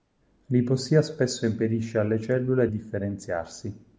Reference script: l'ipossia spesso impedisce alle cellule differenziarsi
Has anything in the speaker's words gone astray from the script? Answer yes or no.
no